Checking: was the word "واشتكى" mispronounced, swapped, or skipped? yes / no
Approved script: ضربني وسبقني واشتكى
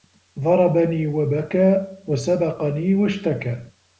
no